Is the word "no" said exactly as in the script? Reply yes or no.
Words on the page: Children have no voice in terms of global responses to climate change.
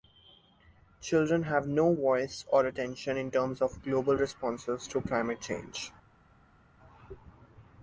yes